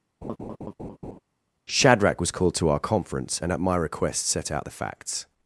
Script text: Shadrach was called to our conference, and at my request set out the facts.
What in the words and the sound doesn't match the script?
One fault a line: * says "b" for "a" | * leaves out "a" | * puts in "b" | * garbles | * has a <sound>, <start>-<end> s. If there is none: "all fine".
* has a laugh, 0.2-1.2 s